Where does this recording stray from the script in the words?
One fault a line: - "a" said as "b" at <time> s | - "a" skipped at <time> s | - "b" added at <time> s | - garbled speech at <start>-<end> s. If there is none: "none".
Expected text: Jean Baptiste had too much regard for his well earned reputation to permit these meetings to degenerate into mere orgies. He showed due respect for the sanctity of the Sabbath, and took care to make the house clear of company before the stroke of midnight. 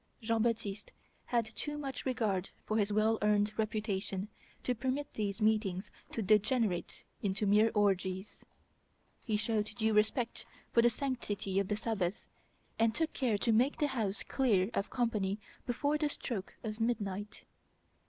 none